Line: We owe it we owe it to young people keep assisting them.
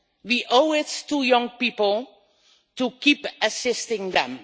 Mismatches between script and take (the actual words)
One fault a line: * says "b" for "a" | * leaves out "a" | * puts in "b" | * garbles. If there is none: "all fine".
* leaves out "we owe it"
* puts in "to"